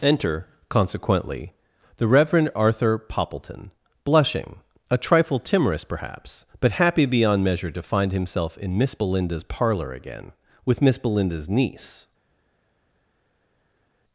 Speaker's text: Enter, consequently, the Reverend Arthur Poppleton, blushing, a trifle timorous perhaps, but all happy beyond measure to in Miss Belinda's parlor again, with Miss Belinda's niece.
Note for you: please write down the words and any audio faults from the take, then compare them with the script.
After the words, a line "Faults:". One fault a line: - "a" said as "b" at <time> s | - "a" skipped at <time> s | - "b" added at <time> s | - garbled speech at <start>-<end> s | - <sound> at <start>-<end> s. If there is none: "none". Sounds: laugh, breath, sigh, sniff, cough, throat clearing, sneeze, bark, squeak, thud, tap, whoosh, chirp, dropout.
Enter, consequently, the Reverend Arthur Poppleton, blushing, a trifle timorous perhaps, but happy beyond measure to find himself in Miss Belinda's parlor again, with Miss Belinda's niece.
Faults:
- "all" skipped at 6.7 s
- "find himself" added at 7.8 s